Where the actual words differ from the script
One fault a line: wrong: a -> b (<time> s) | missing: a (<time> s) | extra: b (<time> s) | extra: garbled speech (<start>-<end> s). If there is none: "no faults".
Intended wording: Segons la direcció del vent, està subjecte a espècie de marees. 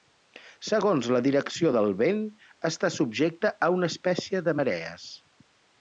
extra: una (3.8 s)